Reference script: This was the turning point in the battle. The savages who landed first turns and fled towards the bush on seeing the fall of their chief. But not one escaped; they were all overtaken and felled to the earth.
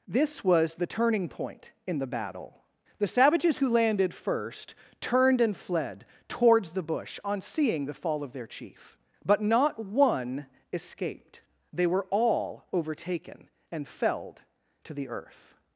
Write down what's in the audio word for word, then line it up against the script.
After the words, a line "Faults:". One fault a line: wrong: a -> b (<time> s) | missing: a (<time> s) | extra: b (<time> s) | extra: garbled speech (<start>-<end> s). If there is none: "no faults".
This was the turning point in the battle. The savages who landed first turned and fled towards the bush on seeing the fall of their chief. But not one escaped; they were all overtaken and felled to the earth.
Faults:
wrong: turns -> turned (5.0 s)